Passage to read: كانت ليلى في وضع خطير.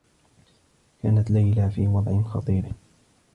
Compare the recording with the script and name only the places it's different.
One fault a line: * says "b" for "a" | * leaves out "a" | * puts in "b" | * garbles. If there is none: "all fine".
all fine